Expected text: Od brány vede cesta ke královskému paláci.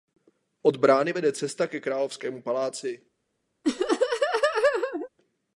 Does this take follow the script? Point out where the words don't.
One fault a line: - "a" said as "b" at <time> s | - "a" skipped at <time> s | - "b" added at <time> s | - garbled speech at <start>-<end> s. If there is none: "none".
none